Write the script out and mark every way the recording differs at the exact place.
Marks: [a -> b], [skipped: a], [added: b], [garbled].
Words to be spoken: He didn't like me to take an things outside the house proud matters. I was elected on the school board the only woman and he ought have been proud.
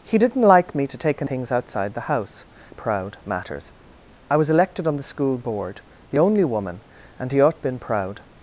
He didn't like me to take an things outside the house proud matters. I was elected on the school board the only woman and he ought have been proud.